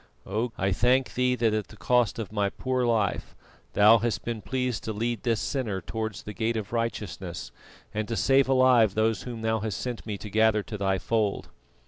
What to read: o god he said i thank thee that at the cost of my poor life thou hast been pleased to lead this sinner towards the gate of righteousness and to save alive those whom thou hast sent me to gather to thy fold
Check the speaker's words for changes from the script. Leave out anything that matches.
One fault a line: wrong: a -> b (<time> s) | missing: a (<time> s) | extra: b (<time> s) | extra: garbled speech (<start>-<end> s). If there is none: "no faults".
missing: god he said (0.5 s)